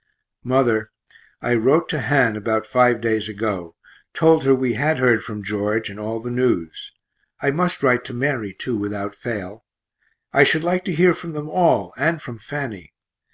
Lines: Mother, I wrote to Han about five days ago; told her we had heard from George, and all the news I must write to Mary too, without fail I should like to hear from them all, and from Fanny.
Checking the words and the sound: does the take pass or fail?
pass